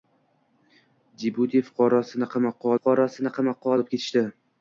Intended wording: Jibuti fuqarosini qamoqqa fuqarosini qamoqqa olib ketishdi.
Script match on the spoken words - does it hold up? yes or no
yes